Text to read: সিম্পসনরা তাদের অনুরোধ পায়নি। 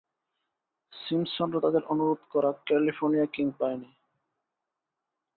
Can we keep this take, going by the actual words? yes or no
no